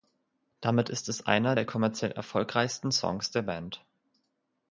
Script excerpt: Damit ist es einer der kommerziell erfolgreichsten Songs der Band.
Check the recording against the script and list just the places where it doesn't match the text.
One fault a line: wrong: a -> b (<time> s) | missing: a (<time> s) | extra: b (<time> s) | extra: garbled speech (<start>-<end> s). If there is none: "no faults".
no faults